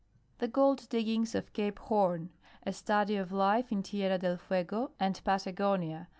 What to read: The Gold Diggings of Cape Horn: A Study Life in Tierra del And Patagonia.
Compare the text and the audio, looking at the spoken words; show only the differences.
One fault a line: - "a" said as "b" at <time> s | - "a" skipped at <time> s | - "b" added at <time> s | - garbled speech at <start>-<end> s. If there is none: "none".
- "of" added at 3.2 s
- "Fuego" added at 4.4 s